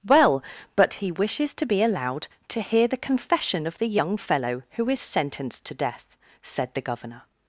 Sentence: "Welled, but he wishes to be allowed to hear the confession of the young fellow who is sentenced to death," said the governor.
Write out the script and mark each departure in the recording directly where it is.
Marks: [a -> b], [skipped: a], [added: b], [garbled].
["Welled, -> Well] but he wishes to be allowed to hear the confession of the young fellow who is sentenced to death," said the governor.